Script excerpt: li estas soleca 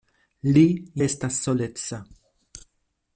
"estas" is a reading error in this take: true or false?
false